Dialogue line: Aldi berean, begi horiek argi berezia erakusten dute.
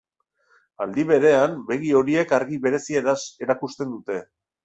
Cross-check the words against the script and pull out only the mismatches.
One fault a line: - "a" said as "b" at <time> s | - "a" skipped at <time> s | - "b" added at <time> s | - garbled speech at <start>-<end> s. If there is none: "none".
none